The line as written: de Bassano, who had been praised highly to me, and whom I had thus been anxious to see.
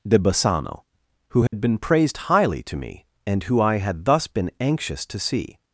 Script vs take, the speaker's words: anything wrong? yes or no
yes